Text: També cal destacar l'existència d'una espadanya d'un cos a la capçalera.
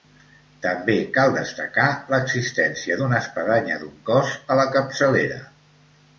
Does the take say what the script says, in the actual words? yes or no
yes